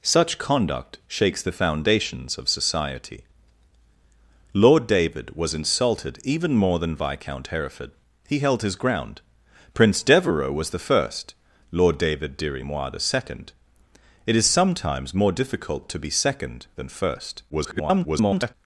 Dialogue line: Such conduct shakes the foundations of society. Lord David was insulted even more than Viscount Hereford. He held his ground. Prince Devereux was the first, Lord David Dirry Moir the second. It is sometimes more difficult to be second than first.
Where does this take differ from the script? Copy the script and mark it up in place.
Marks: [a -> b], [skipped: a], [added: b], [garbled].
Such conduct shakes the foundations of society. Lord David was insulted even more than Viscount Hereford. He held his ground. Prince Devereux was the first, Lord David Dirry Moir the second. It is sometimes more difficult to be second than first. [garbled]